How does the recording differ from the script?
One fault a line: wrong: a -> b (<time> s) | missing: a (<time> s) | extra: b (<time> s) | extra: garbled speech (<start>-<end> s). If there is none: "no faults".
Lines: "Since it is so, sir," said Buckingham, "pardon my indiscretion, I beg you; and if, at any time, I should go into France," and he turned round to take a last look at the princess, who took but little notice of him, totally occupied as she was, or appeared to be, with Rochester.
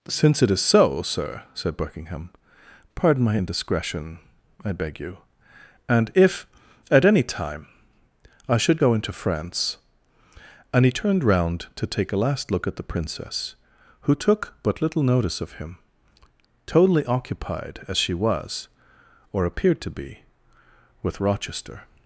no faults